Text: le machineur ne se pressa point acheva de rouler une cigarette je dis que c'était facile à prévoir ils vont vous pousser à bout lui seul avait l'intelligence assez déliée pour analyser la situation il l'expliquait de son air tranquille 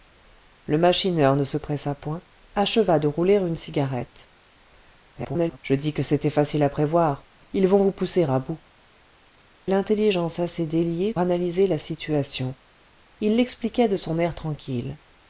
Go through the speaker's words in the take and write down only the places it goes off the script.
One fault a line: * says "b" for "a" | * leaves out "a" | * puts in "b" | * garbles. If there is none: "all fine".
* garbles
* leaves out "lui seul avait"
* leaves out "pour"